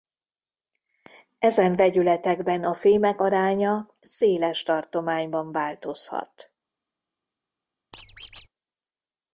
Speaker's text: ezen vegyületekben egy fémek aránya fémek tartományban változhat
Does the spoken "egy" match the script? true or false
false